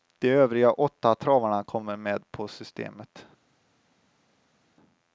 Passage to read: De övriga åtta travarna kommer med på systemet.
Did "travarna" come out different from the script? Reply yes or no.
no